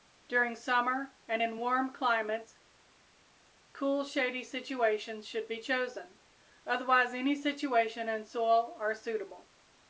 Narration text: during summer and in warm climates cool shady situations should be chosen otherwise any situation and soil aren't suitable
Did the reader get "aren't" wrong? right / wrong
wrong